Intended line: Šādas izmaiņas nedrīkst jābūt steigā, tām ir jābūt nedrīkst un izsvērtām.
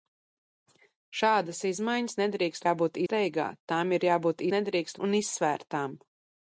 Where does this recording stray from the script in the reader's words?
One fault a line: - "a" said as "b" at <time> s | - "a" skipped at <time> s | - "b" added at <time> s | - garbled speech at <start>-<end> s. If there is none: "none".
none